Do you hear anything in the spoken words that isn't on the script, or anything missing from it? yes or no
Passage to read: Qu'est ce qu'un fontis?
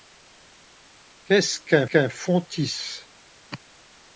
yes